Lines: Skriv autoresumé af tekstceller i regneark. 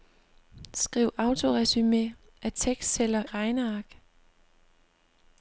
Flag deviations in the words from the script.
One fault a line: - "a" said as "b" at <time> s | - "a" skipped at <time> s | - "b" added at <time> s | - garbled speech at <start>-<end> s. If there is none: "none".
- "i" skipped at 3.2 s